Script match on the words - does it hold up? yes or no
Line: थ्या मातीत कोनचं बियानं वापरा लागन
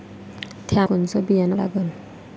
no